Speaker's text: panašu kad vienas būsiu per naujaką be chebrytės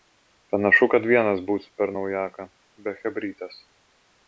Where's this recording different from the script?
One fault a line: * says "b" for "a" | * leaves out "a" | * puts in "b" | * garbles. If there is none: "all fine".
all fine